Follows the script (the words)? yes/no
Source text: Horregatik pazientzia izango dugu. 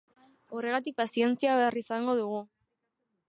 no